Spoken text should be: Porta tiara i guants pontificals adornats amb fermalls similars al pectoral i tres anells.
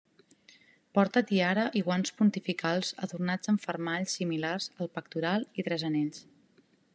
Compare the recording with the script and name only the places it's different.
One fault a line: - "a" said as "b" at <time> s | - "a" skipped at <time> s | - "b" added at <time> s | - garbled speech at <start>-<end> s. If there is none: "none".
none